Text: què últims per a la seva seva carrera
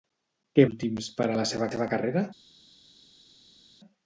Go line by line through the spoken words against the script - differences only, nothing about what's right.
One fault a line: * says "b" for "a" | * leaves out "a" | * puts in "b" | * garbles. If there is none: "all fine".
all fine